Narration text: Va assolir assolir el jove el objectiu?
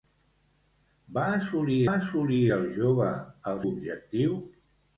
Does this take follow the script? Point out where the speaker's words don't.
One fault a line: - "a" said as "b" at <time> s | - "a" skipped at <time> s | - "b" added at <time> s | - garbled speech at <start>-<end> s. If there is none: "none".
none